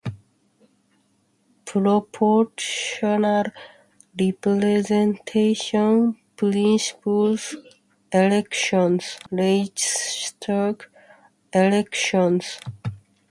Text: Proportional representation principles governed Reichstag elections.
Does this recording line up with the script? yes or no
no